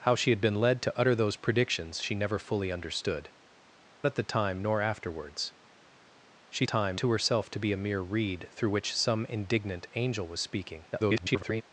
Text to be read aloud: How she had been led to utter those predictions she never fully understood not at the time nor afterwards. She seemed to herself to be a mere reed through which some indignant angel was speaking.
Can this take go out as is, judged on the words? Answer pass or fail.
fail